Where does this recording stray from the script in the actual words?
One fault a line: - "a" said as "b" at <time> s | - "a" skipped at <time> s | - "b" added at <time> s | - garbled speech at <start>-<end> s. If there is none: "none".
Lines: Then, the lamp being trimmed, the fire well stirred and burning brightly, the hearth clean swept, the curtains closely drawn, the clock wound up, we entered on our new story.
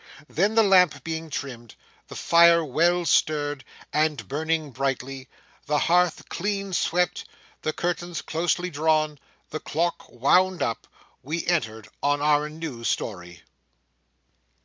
none